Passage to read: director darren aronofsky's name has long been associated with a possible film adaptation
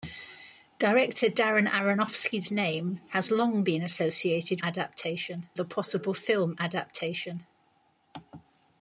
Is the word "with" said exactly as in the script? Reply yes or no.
no